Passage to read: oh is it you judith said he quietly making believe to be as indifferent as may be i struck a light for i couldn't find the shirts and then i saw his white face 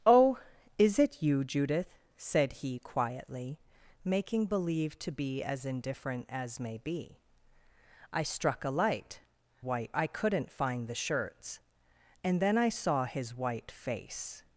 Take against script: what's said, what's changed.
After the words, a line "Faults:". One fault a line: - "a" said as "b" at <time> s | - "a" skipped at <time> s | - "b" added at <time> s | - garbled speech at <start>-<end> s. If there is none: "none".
oh is it you judith said he quietly making believe to be as indifferent as may be i struck a light white i couldn't find the shirts and then i saw his white face
Faults:
- "for" said as "white" at 9.6 s